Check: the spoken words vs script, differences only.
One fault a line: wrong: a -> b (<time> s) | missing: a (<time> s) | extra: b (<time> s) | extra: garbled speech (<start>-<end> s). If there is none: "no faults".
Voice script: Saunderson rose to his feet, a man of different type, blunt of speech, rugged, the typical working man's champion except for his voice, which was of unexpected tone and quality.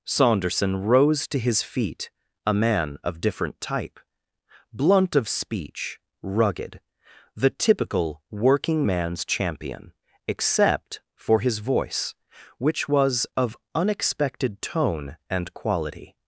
no faults